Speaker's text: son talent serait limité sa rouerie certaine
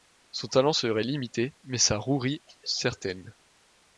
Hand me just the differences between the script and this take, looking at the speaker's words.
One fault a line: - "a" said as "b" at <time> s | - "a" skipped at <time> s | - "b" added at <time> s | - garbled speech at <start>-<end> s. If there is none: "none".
- "mais" added at 1.6 s